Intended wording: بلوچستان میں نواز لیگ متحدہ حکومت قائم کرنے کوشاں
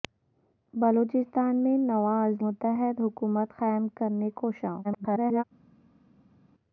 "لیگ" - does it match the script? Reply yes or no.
no